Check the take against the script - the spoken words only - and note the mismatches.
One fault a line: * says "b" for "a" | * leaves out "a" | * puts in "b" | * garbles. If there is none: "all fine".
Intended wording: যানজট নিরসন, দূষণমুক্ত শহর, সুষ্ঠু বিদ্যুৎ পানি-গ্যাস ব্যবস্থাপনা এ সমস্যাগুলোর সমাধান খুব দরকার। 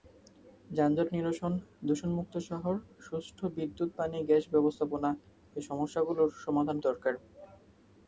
* leaves out "খুব"